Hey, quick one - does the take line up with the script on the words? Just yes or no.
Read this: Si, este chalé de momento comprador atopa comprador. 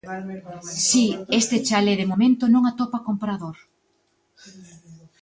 no